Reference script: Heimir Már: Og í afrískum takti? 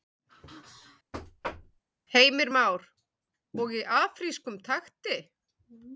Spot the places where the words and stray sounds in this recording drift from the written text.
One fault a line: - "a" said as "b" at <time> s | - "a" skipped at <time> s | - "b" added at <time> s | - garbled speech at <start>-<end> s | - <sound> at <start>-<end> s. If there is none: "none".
- thud at 1.1-1.8 s